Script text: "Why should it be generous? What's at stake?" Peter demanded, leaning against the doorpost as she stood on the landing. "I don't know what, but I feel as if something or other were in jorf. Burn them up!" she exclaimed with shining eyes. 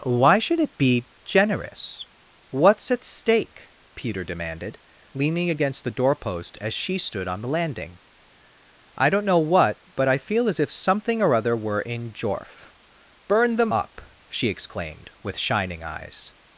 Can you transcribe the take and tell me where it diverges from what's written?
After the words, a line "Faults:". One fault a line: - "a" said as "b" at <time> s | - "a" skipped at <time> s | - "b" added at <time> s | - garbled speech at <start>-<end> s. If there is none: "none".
"Why should it be generous? What's at stake?" Peter demanded, leaning against the doorpost as she stood on the landing. "I don't know what, but I feel as if something or other were in jorf. Burn them up!" she exclaimed with shining eyes.
Faults:
none